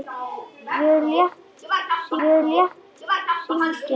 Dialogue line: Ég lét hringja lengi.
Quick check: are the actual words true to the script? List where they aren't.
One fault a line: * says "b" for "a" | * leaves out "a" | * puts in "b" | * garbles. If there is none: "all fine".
* puts in "ég lét hringja"